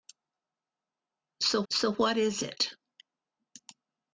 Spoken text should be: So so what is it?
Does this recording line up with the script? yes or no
yes